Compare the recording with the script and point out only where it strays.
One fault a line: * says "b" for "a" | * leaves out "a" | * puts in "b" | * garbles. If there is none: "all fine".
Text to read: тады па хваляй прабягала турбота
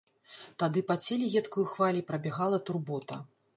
* puts in "целе едкаю"